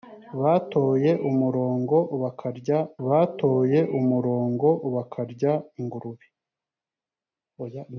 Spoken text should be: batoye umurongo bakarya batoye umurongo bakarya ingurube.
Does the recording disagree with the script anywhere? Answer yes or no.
no